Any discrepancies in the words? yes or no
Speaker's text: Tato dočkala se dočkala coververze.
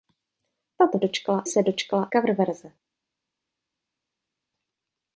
no